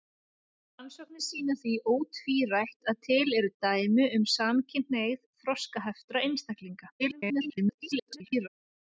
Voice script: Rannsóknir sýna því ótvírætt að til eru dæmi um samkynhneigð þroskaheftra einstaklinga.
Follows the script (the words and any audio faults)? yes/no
no